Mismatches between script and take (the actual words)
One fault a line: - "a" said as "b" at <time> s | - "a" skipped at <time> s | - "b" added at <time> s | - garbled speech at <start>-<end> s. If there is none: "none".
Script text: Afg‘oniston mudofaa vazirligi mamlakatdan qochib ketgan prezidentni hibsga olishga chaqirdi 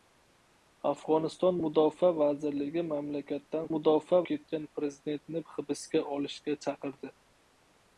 - "qochib" said as "mudofaa" at 3.7 s